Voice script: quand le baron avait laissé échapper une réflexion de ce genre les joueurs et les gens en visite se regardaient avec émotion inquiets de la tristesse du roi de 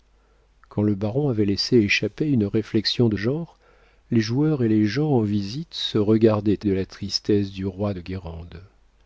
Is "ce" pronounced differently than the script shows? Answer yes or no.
yes